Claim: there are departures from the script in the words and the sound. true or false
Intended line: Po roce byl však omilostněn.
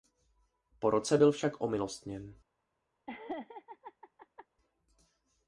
true